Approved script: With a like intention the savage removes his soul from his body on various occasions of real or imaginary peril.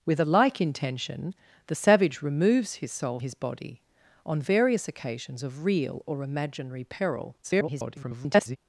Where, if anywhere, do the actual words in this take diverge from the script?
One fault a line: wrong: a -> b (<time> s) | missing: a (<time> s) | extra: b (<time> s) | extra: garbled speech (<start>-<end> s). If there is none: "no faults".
missing: from (3.2 s)
extra: garbled speech (7.4-8.6 s)